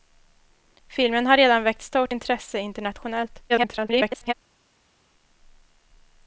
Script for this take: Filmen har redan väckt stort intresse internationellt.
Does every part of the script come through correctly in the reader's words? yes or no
no